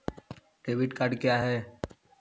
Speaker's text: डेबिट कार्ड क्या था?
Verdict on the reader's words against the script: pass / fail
fail